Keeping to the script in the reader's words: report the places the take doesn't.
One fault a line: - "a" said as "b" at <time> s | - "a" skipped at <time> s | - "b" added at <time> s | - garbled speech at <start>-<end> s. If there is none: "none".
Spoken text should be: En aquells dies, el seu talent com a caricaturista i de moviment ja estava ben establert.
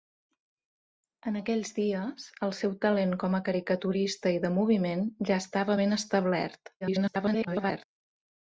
- garbled speech at 6.8-7.8 s